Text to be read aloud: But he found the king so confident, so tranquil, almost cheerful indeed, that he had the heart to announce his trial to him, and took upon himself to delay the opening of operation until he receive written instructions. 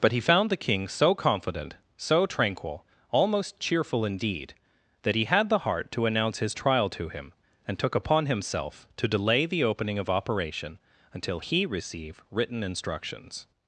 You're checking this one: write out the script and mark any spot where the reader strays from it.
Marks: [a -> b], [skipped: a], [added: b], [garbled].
But he found the king so confident, so tranquil, almost cheerful indeed, that he had the heart to announce his trial to him, and took upon himself to delay the opening of operation until he receive written instructions.